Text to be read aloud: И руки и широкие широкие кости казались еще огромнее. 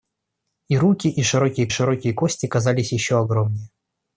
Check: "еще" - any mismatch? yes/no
no